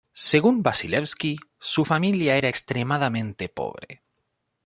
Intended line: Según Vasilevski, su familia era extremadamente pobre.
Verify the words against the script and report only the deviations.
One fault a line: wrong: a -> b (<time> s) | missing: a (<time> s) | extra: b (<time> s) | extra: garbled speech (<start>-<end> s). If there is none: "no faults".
no faults